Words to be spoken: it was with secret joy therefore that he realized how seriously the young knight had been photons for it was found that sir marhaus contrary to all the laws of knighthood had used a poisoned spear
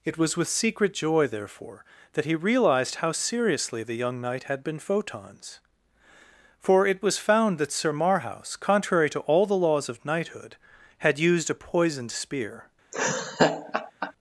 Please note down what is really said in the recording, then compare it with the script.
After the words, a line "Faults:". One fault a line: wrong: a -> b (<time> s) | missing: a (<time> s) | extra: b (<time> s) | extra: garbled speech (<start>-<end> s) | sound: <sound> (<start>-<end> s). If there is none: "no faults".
it was with secret joy therefore that he realized how seriously the young knight had been photons for it was found that sir marhaus contrary to all the laws of knighthood had used a poisoned spear
Faults:
sound: laugh (12.9-14.1 s)